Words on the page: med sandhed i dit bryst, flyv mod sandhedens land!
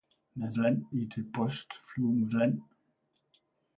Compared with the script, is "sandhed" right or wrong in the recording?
wrong